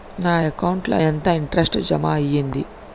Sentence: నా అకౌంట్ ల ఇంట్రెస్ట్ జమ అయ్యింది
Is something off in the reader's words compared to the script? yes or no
yes